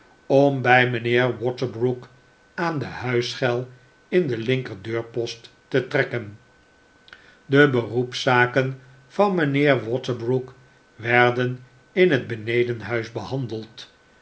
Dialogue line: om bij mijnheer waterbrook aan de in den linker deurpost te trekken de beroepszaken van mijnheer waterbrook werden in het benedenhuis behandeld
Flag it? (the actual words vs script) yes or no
yes